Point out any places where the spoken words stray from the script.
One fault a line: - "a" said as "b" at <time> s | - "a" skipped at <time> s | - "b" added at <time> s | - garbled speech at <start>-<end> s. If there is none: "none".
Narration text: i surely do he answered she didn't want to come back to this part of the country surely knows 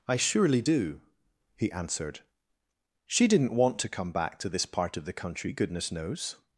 - "surely" said as "goodness" at 5.5 s